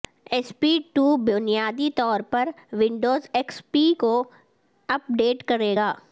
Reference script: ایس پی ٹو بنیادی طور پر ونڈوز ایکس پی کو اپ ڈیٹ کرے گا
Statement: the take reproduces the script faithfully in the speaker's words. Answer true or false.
true